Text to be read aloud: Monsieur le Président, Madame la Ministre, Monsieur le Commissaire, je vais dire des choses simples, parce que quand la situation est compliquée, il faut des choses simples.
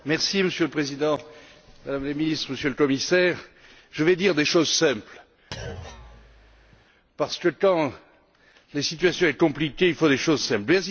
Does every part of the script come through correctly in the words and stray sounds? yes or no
no